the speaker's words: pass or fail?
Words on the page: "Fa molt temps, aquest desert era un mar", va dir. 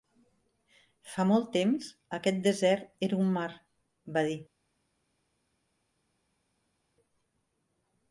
pass